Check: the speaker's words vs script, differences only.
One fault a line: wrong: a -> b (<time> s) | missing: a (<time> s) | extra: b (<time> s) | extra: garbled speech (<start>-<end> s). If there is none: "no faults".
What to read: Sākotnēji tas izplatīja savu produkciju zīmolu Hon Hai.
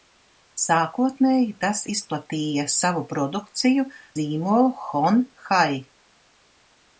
no faults